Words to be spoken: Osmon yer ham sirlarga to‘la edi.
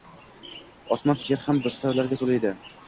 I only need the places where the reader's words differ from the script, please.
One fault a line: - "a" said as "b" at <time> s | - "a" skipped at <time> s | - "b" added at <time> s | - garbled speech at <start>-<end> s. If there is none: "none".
none